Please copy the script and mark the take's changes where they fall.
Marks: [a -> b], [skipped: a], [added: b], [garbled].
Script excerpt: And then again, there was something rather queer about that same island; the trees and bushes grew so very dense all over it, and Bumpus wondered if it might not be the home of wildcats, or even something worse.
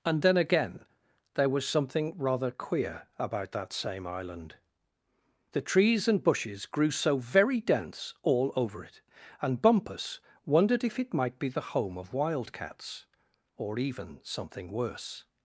And then again, there was something rather queer about that same island; the trees and bushes grew so very dense all over it, and Bumpus wondered if it might [skipped: not] be the home of wildcats, or even something worse.